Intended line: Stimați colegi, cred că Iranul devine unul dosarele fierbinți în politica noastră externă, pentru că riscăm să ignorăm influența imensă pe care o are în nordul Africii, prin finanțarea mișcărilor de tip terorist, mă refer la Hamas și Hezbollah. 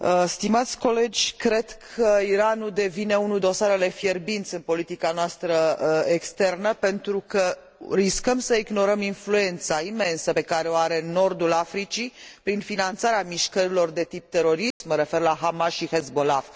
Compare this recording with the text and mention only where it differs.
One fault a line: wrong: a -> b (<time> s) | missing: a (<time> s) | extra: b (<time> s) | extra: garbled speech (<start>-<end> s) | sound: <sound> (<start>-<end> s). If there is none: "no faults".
sound: dropout (14.7-14.8 s)